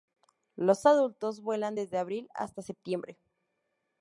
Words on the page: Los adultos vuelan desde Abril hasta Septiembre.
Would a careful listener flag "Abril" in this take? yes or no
no